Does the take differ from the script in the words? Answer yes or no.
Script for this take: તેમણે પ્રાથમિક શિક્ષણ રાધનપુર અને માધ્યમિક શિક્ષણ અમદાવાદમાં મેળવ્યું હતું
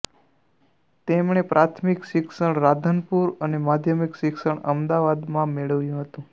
no